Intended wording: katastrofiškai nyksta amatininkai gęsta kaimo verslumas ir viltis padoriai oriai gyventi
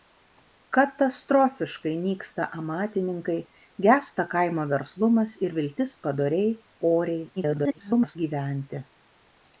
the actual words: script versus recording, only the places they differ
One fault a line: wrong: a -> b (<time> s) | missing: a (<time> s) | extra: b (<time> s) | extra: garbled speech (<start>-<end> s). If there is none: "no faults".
extra: garbled speech (7.4-8.2 s)